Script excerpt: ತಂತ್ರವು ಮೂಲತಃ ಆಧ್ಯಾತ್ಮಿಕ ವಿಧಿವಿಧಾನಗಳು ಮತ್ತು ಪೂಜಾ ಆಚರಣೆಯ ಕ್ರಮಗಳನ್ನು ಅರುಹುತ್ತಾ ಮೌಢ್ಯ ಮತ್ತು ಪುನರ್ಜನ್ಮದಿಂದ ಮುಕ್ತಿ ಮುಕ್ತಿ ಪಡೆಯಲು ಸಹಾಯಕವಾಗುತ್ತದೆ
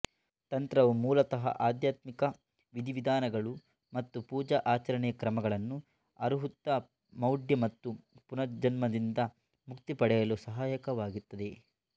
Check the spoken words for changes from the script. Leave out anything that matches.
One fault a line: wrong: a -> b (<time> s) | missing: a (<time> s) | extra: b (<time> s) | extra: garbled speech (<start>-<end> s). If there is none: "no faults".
missing: ಮುಕ್ತಿ (9.9 s)